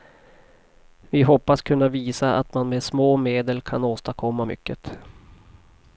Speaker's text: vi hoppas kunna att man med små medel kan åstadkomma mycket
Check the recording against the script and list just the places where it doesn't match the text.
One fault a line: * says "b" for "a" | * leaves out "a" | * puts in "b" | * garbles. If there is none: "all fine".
* puts in "visa"